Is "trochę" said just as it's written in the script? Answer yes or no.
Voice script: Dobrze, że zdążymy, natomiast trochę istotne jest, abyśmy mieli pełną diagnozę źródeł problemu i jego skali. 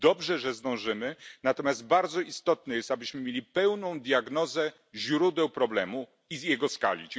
no